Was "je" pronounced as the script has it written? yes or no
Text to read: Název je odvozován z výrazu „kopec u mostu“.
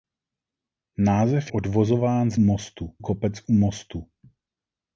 no